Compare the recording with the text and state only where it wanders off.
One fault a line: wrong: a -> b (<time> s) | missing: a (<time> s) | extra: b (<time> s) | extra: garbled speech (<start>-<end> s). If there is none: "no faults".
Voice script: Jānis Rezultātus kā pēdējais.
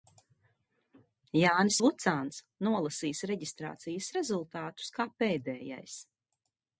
extra: Vucāns nolasīs reģistrācijas (1.9 s)